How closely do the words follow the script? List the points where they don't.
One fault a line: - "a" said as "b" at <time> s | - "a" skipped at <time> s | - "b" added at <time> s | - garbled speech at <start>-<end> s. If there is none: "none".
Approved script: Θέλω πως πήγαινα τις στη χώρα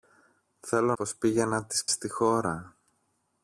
none